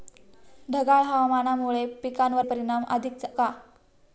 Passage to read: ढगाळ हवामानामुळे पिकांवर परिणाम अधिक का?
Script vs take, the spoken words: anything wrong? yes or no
no